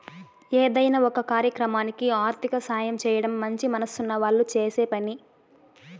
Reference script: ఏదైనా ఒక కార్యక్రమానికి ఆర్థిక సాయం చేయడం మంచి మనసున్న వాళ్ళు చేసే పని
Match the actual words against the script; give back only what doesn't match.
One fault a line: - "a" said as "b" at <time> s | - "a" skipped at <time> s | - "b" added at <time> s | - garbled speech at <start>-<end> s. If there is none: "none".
none